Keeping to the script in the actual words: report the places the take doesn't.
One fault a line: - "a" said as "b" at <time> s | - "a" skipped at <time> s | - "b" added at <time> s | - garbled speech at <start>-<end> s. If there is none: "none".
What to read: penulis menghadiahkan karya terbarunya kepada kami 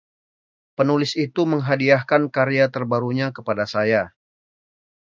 - "itu" added at 1.1 s
- "kami" said as "saya" at 3.7 s